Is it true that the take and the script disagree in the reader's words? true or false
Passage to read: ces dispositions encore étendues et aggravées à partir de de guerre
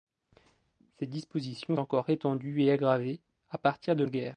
false